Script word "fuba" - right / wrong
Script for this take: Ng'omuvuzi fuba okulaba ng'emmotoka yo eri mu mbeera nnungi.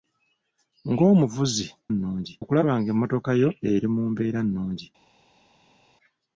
wrong